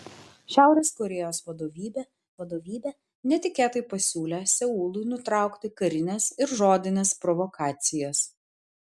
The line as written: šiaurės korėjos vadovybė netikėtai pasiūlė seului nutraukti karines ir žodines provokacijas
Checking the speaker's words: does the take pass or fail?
fail